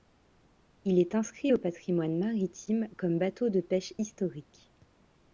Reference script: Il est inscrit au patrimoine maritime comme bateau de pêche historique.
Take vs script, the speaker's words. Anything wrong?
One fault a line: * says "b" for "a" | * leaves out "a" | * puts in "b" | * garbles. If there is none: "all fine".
all fine